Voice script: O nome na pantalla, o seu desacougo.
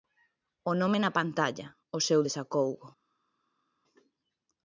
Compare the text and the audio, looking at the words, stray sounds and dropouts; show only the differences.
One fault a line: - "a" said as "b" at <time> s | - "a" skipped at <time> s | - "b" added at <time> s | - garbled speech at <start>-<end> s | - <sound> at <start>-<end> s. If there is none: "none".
none